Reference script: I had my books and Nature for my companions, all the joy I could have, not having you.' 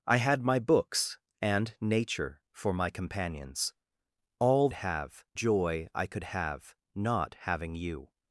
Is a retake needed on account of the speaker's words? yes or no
yes